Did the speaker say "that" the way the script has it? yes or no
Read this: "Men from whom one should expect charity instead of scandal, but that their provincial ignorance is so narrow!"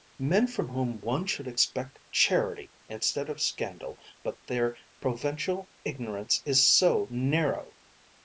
no